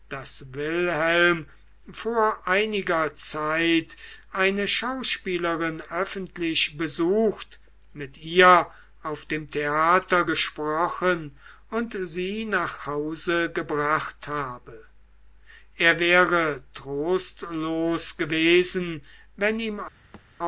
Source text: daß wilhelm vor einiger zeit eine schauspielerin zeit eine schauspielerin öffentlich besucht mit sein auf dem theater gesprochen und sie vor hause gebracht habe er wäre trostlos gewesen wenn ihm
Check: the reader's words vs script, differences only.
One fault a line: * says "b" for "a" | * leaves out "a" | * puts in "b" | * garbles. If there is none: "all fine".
* leaves out "zeit eine schauspielerin"
* says "ihr" for "sein"
* says "nach" for "vor"